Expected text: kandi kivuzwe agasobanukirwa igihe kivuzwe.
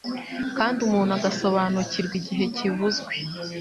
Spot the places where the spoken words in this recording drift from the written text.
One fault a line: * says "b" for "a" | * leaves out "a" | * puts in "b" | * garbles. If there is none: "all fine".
* says "umuntu" for "kivuzwe"